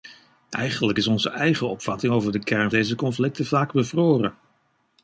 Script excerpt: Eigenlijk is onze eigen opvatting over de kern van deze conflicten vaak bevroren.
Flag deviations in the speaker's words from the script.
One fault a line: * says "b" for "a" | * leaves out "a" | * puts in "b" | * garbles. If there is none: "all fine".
* leaves out "van"